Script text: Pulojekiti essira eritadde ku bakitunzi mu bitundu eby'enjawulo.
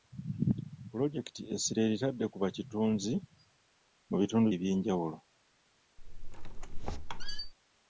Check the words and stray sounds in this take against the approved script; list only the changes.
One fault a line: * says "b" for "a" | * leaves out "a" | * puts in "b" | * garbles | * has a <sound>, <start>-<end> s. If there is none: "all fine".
* has a squeak, 6.0-7.5 s